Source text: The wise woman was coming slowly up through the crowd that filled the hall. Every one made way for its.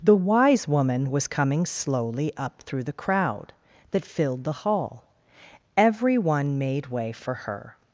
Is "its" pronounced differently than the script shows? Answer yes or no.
yes